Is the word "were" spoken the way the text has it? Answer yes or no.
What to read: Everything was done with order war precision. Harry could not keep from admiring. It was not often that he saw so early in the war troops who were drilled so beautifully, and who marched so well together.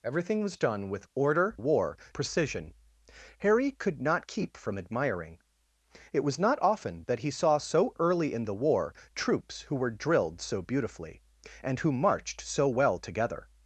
yes